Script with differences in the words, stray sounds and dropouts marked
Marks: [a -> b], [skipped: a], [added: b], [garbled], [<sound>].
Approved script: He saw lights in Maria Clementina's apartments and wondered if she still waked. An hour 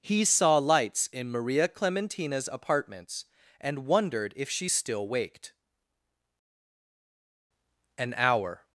He saw lights in Maria Clementina's apartments and wondered if she still waked. An hour